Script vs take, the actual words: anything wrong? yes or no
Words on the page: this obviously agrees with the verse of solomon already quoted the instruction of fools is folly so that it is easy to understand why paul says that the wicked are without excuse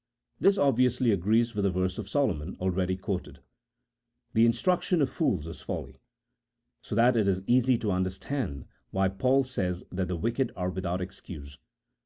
no